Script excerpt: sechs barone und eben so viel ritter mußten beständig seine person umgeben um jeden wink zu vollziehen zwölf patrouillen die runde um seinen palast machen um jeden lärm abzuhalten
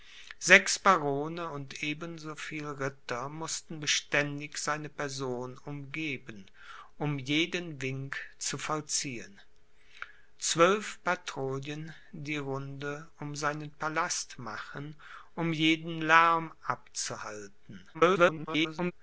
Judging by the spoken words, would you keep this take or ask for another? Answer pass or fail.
fail